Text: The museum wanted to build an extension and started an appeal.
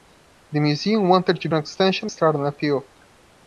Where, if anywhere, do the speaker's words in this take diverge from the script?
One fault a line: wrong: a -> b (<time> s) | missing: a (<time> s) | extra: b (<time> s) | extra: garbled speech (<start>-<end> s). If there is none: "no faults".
missing: build (1.5 s)
missing: and (2.1 s)